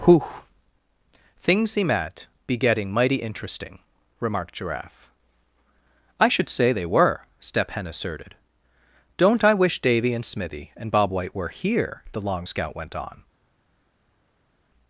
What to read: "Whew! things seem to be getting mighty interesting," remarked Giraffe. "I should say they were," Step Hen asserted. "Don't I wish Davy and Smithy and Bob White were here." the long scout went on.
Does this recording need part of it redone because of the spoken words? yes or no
yes